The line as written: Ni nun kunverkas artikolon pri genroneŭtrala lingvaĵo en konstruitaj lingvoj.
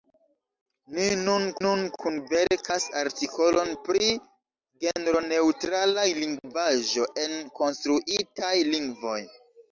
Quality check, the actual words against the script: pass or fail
fail